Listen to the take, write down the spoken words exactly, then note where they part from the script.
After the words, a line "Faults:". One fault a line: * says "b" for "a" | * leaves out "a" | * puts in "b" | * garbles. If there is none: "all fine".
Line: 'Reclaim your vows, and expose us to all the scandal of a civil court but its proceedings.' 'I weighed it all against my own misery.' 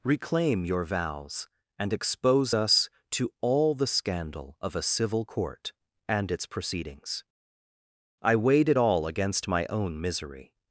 'Reclaim your vows, and expose us to all the scandal of a civil court and its proceedings.' 'I weighed it all against my own misery.'
Faults:
* says "and" for "but"